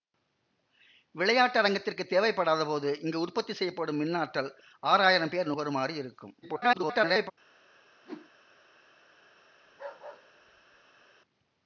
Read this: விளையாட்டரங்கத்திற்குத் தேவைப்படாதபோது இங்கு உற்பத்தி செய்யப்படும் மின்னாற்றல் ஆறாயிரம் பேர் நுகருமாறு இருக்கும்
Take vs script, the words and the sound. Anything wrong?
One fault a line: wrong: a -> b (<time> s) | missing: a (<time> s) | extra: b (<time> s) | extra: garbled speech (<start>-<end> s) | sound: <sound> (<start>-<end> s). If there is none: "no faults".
extra: garbled speech (6.4-7.3 s)
sound: whoosh (8.0-8.3 s)
sound: bark (9.6-11.1 s)